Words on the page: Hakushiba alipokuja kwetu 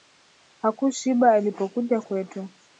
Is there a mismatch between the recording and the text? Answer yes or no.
no